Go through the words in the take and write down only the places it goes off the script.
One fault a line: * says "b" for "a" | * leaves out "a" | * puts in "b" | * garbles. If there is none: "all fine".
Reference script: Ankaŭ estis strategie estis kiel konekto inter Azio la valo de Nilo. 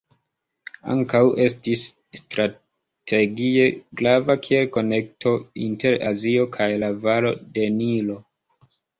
* says "grava" for "estis"
* puts in "kaj"